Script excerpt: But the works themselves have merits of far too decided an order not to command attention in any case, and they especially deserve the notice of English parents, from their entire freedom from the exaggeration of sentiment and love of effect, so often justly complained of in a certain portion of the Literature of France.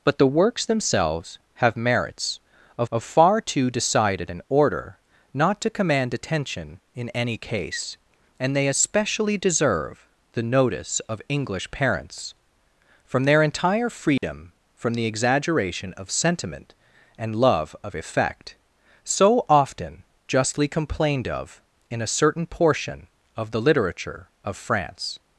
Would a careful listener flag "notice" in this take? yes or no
no